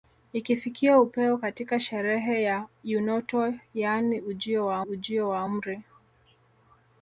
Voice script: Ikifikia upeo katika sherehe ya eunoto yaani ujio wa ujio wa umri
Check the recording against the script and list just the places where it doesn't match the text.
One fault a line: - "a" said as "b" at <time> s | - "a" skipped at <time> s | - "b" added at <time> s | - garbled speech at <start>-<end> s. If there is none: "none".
none